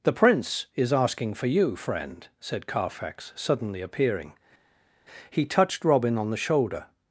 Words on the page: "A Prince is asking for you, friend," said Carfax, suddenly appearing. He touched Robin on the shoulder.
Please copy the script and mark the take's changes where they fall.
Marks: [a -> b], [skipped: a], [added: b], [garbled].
["A -> The] Prince is asking for you, friend," said Carfax, suddenly appearing. He touched Robin on the shoulder.